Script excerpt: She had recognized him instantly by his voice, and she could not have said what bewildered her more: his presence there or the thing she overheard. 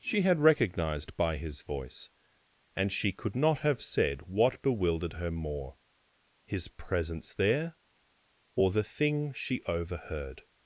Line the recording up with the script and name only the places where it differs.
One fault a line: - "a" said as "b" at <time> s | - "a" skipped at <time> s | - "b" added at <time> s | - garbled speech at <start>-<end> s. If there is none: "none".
- "him instantly" skipped at 1.1 s